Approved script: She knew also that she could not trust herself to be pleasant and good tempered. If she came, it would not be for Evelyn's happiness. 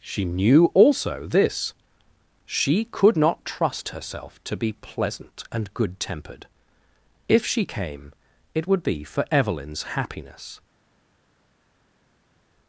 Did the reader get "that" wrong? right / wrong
wrong